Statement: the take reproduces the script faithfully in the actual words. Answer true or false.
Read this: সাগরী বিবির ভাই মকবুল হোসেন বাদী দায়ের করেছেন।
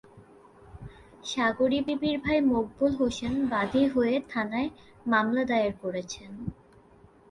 false